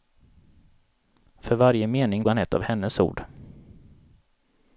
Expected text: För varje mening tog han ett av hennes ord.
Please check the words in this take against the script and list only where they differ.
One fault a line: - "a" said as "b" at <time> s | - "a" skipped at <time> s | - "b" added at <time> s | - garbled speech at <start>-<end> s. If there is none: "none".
- "tog" skipped at 2.2 s